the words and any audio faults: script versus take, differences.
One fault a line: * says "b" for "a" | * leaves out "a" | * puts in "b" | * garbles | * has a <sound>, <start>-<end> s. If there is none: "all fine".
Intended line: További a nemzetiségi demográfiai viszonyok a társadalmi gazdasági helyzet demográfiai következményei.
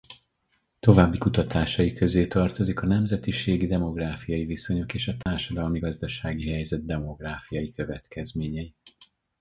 * puts in "kutatásai közé tartozik"
* puts in "és"
* has a dropout, 5.2-5.3 s